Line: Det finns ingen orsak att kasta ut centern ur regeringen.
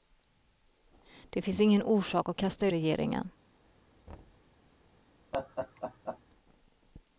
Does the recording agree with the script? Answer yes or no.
no